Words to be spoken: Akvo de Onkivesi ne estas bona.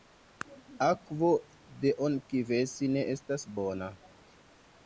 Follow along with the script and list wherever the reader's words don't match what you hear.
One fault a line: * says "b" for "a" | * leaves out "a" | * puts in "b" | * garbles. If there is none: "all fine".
all fine